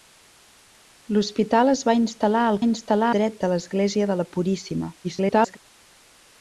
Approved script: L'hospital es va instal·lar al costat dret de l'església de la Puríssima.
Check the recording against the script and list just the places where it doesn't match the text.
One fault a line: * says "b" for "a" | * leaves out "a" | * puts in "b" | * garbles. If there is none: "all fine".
* says "instal·lar" for "costat"
* garbles